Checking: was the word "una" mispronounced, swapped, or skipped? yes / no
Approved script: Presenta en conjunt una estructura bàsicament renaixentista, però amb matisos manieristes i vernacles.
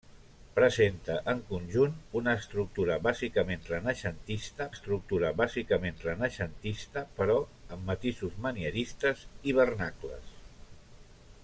no